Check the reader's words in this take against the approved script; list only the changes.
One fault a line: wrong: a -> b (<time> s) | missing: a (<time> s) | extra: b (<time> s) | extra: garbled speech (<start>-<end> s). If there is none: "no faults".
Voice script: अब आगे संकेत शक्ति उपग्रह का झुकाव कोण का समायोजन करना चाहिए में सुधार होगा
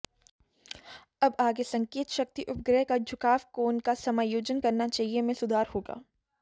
no faults